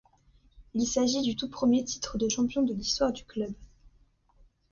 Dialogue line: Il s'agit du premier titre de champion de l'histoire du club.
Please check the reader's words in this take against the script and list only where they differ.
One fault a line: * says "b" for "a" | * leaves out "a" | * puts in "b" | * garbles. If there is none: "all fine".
* puts in "tout"